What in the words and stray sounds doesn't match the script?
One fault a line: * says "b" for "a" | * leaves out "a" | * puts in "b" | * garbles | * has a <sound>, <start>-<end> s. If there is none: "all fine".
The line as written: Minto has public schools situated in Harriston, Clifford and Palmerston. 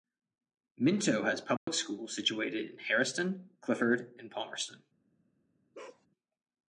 * has a dropout, 1.6-1.7 s
* has a bark, 5.7-6.1 s